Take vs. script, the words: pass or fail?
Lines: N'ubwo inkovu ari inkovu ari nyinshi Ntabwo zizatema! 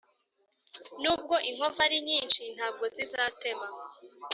fail